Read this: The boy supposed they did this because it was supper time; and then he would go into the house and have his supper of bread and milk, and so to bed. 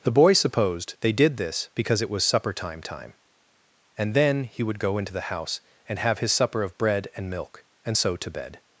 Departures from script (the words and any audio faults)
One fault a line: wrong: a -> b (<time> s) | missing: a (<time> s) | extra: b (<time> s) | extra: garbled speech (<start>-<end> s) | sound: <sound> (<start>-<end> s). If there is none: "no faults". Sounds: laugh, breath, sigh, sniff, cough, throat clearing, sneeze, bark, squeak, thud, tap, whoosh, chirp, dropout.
extra: time (2.8 s)